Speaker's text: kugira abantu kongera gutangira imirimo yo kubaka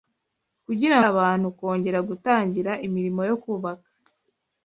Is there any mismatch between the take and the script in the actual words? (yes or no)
no